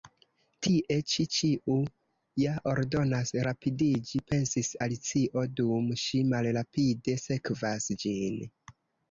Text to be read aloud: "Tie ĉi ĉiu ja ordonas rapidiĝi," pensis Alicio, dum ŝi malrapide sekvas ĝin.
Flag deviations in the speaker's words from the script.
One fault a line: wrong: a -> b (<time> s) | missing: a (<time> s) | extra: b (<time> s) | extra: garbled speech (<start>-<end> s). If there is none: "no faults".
no faults